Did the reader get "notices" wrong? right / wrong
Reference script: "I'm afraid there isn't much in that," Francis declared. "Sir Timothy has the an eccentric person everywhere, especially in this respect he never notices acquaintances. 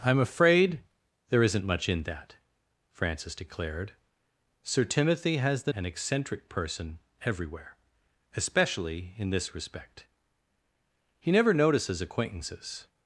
right